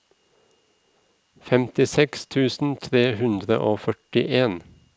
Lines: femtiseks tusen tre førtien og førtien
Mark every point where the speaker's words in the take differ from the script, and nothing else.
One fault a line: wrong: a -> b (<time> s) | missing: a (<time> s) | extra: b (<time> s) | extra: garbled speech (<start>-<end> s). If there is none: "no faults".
wrong: førtien -> hundre (3.2 s)